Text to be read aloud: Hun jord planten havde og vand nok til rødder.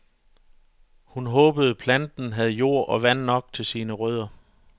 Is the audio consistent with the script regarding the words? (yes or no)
no